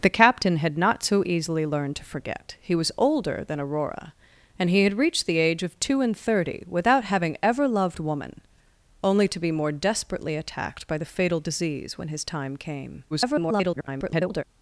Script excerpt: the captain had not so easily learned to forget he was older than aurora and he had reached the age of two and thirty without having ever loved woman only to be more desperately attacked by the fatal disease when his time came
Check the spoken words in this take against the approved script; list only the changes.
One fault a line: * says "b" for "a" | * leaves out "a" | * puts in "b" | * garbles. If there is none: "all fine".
* garbles